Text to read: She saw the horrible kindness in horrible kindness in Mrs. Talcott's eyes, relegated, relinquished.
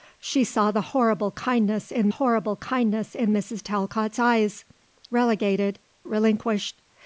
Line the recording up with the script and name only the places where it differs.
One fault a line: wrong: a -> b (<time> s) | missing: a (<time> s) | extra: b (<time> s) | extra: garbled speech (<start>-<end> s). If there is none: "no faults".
no faults